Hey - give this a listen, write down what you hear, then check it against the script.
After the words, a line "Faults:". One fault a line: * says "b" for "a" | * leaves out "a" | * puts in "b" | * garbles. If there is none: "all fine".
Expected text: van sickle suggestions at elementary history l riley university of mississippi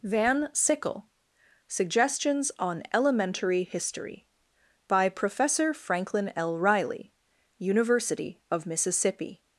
van sickle suggestions on elementary history by professor franklin l riley university of mississippi
Faults:
* says "on" for "at"
* puts in "by professor franklin"